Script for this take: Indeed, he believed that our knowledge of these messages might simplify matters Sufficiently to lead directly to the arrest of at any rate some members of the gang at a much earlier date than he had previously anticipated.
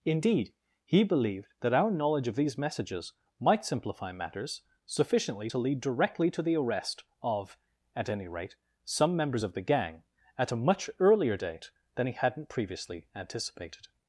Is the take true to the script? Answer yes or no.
no